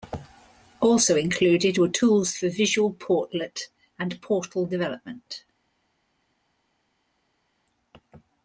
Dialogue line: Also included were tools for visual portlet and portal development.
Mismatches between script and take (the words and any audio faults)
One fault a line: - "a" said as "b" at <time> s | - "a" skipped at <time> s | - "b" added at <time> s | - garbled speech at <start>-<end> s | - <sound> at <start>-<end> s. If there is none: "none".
none